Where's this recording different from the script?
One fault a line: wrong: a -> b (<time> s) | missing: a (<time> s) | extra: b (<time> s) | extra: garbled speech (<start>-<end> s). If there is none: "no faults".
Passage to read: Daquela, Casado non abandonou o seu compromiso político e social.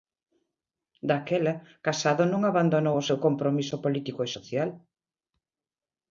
no faults